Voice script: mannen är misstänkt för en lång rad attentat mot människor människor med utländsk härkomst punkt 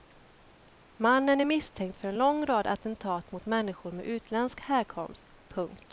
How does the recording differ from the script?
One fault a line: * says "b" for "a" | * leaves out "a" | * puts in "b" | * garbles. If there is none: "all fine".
* leaves out "människor"